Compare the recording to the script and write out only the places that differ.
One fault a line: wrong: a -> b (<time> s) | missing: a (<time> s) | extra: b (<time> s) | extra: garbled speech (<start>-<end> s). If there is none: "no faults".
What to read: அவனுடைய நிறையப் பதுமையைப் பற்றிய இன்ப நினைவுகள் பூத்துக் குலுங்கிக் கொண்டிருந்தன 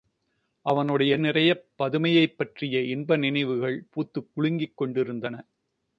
no faults